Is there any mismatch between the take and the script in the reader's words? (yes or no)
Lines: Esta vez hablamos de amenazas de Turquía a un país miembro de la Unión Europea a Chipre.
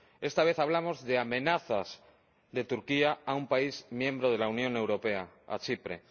no